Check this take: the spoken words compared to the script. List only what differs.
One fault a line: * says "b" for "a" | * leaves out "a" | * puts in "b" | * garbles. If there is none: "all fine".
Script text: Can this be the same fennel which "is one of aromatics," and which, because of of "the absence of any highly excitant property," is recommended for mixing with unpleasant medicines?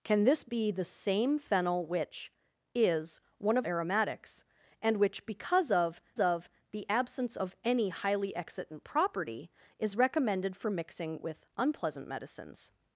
all fine